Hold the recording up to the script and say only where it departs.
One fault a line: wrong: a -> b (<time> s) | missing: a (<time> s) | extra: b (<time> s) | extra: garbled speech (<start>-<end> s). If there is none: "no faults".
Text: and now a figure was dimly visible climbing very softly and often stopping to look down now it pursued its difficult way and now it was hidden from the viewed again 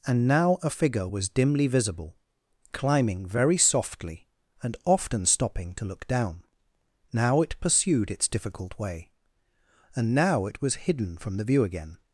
wrong: viewed -> view (11.4 s)